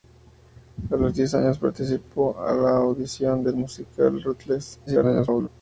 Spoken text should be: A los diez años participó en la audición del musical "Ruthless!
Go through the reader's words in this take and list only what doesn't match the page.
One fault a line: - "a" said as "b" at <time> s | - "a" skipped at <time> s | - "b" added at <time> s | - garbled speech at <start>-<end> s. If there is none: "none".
- garbled speech at 4.9-5.5 s